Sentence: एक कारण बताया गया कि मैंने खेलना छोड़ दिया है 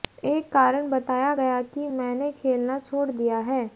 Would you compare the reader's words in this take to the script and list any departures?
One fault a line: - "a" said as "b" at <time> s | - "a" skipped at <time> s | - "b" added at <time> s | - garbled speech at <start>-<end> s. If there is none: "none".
none